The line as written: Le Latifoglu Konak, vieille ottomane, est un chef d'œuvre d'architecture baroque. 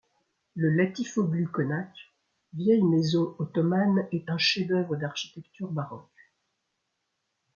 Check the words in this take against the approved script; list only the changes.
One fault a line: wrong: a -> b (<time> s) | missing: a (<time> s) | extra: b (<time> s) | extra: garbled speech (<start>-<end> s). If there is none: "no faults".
extra: maison (2.8 s)